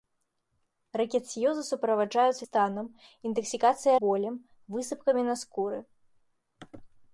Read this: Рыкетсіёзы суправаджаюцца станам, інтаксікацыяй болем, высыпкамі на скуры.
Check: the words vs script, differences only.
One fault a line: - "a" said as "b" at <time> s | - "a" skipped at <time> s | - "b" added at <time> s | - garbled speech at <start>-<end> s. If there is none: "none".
none